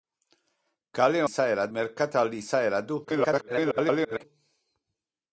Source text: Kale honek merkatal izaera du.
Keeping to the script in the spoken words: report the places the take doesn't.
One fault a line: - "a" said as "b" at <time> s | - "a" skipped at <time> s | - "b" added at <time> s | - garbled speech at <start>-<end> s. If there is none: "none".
- "honek" said as "izaera" at 1.3 s
- garbled speech at 3.0-4.2 s